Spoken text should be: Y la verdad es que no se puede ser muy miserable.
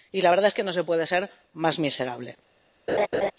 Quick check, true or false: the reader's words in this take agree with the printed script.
false